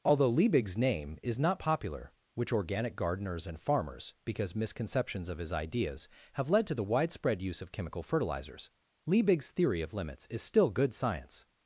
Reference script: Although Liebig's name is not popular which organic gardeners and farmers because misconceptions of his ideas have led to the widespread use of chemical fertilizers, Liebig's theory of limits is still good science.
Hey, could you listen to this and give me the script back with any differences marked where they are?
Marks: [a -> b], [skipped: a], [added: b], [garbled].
Although Liebig's name is not popular which organic gardeners and farmers because misconceptions of his ideas have led to the widespread use of chemical fertilizers, Liebig's theory of limits is still good science.